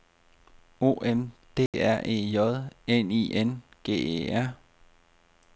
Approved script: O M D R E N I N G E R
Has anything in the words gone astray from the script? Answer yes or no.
yes